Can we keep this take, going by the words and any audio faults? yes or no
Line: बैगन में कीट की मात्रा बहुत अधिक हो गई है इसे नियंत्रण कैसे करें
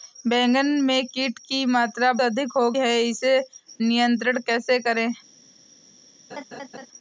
no